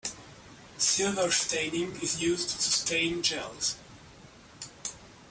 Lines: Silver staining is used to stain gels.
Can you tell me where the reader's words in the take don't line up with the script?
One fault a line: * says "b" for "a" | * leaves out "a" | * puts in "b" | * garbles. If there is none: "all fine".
all fine